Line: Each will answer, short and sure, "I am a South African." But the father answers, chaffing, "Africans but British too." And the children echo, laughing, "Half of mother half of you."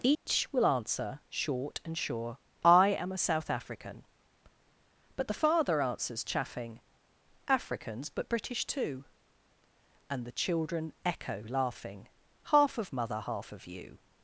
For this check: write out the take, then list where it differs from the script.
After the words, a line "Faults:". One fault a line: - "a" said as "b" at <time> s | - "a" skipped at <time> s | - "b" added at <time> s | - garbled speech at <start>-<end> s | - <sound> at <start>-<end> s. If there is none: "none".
Each will answer, short and sure, "I am a South African." But the father answers, chaffing, "Africans but British too." And the children echo, laughing, "Half of mother half of you."
Faults:
- dropout at 0.1-0.3 s